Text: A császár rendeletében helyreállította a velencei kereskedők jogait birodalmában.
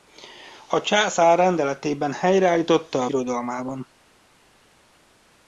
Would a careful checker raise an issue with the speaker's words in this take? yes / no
yes